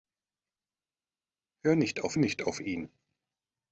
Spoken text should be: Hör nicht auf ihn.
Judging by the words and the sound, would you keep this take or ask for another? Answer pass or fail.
fail